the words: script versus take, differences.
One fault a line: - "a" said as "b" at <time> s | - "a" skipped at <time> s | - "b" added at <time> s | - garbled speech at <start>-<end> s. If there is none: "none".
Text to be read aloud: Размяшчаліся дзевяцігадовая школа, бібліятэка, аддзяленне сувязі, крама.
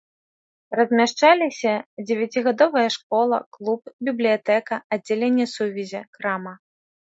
- "клуб" added at 3.6 s